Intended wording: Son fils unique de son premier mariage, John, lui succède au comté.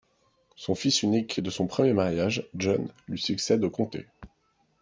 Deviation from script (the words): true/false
false